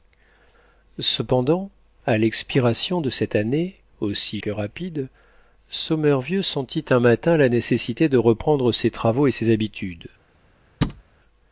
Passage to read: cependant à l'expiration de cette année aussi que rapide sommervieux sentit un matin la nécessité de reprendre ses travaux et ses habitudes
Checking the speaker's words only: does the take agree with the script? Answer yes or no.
yes